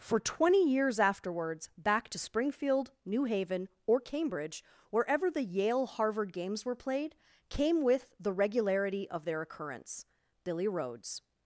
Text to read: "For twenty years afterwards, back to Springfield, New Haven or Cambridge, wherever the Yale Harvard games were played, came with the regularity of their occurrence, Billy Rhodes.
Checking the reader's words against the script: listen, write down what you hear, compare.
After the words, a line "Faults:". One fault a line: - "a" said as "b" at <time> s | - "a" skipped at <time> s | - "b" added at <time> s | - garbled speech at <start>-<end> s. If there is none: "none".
"For twenty years afterwards, back to Springfield, New Haven or Cambridge, wherever the Yale Harvard games were played, came with the regularity of their occurrence, Billy Rhodes.
Faults:
none